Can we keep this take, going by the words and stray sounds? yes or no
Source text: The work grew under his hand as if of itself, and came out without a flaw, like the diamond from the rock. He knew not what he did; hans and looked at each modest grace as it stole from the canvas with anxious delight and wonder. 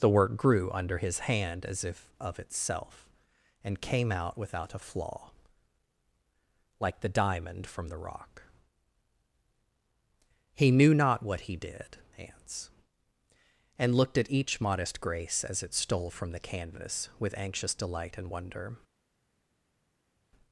yes